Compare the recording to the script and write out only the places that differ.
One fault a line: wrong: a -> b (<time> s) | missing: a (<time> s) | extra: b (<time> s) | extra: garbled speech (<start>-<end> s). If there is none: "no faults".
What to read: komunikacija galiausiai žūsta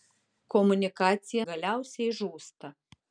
no faults